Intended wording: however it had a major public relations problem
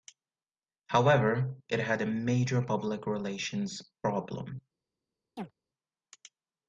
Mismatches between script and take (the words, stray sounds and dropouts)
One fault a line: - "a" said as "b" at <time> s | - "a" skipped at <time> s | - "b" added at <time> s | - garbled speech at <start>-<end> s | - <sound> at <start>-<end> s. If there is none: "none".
- chirp at 5.4-5.5 s